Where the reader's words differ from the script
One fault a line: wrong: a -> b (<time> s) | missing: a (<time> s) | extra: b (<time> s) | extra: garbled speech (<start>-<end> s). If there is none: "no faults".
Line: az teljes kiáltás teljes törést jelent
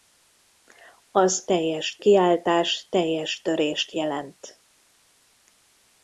no faults